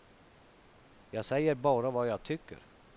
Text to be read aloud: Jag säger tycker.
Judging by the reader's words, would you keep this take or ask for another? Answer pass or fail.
fail